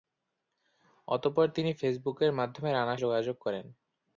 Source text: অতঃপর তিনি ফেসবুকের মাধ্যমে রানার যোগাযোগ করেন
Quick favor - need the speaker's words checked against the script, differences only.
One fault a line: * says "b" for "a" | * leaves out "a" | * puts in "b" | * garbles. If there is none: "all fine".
all fine